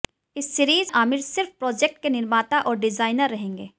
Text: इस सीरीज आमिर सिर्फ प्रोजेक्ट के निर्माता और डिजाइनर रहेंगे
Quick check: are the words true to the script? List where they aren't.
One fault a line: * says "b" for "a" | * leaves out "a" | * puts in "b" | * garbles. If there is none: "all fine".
all fine